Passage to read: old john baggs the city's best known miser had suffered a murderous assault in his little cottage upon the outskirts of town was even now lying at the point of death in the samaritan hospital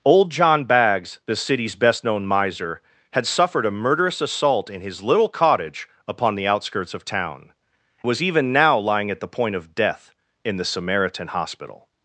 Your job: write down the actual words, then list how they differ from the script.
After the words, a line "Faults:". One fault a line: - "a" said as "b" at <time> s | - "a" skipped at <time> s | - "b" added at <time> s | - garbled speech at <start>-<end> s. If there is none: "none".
old john baggs the city's best known miser had suffered a murderous assault in his little cottage upon the outskirts of town was even now lying at the point of death in the samaritan hospital
Faults:
none